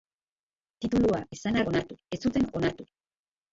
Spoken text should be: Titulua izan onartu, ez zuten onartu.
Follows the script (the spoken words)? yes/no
yes